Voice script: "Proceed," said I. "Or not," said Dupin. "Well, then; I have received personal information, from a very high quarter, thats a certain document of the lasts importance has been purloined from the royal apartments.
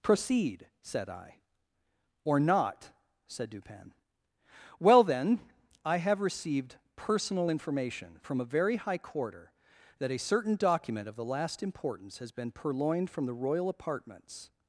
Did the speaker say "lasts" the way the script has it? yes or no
no